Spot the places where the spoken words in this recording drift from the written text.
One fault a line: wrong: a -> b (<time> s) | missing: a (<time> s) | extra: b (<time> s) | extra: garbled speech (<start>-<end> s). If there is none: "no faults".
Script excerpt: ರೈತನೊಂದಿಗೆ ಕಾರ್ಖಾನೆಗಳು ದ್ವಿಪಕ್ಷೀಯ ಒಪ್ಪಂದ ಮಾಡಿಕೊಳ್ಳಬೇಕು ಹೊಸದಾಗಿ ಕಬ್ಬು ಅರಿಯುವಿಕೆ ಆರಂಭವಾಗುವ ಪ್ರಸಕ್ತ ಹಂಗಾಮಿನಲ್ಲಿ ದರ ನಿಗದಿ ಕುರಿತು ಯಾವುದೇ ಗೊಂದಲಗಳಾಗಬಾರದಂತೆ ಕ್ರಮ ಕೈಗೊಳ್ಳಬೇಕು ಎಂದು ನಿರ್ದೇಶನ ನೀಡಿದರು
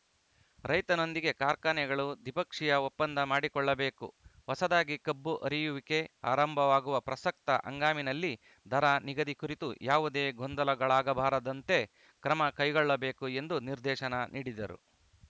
no faults